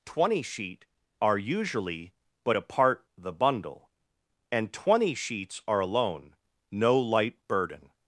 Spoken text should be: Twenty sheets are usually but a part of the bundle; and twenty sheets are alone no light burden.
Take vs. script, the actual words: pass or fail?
fail